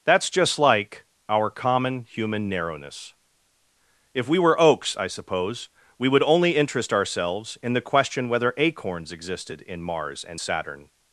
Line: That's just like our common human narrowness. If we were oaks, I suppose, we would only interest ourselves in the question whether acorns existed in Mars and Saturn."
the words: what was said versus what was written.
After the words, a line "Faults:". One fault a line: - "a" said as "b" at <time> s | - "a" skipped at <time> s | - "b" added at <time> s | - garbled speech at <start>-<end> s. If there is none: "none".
That's just like our common human narrowness. If we were oaks, I suppose, we would only interest ourselves in the question whether acorns existed in Mars and Saturn."
Faults:
none